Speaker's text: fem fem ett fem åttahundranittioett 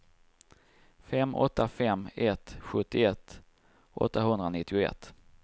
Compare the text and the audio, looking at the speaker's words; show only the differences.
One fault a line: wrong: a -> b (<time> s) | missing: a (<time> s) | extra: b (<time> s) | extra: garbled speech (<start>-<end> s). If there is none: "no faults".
extra: åtta (1.3 s)
wrong: fem -> sjuttioett (2.6 s)